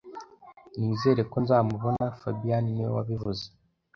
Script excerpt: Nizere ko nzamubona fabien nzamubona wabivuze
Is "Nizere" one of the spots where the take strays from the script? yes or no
no